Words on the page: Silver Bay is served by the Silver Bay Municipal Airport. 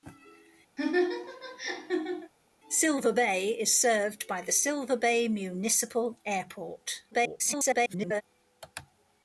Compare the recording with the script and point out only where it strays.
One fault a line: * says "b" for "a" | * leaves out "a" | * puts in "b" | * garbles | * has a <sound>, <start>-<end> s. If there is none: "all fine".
* has a laugh, 0.8-2.3 s
* garbles